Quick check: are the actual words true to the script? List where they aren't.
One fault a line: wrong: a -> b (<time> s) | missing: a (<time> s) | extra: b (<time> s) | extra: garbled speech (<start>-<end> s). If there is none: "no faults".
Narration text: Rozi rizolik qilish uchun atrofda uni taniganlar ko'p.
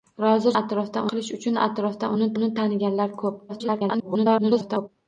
wrong: rizolik -> atrofda (0.6 s)
extra: uni (2.4 s)
extra: garbled speech (3.5-4.9 s)